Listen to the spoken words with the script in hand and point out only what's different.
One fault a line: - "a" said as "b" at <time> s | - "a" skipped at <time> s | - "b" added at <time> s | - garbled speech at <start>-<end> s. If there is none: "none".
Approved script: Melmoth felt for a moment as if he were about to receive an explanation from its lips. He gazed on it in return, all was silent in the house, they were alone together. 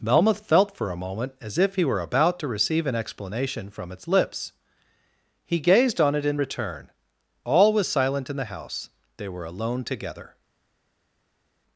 none